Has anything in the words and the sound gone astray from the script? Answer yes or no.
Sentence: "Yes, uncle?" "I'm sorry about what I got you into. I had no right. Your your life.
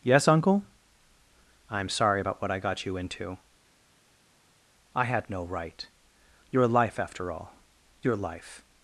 yes